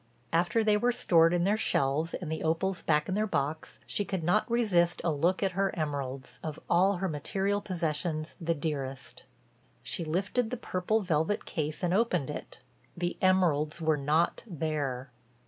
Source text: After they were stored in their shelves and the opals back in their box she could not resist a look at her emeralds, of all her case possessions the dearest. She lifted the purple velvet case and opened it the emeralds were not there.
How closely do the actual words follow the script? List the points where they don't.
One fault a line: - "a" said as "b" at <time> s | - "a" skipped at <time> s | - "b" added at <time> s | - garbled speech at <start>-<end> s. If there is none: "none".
- "case" said as "material" at 7.1 s